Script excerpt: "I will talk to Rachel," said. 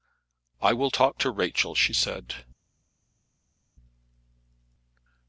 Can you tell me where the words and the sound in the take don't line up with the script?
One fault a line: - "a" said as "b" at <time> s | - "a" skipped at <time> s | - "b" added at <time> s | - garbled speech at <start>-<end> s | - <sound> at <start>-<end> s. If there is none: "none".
- "she" added at 1.7 s